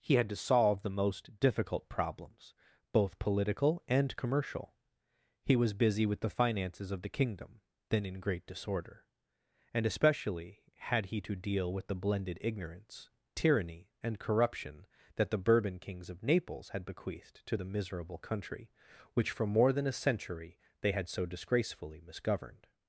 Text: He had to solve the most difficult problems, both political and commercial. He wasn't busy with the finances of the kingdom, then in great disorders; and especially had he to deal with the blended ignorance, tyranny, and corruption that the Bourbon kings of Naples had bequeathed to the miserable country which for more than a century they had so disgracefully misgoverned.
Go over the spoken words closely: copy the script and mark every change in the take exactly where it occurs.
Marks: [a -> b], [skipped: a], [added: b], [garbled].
He had to solve the most difficult problems, both political and commercial. He [wasn't -> was] busy with the finances of the kingdom, then in great [disorders; -> disorder] and especially had he to deal with the blended ignorance, tyranny, and corruption that the Bourbon kings of Naples had bequeathed to the miserable country which for more than a century they had so disgracefully misgoverned.